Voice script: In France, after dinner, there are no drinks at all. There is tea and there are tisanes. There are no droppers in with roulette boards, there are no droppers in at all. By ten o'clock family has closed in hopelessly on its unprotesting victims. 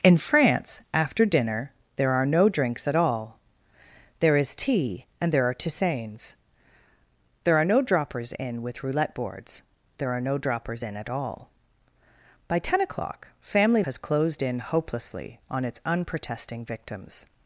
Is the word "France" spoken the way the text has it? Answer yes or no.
yes